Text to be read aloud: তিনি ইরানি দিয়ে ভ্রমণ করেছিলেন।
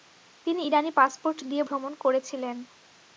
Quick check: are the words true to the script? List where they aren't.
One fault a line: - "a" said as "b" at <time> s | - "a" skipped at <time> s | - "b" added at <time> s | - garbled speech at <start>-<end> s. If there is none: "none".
- "পাসপোর্ট" added at 1.0 s